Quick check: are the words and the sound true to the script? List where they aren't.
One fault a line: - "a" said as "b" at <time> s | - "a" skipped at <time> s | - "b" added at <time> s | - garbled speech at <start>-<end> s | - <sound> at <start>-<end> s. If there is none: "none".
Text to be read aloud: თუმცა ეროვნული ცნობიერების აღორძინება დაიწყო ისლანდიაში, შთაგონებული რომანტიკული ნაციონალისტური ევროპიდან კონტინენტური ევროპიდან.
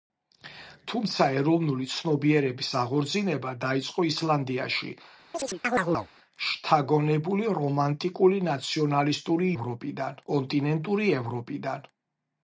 - chirp at 5.3-6.1 s